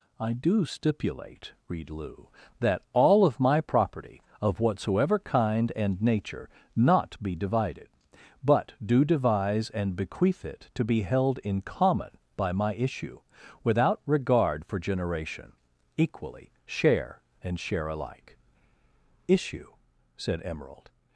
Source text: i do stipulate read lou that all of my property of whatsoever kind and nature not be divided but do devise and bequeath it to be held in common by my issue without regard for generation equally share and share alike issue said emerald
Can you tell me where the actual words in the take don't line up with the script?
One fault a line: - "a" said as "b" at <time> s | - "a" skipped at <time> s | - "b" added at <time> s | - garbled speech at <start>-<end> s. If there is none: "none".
none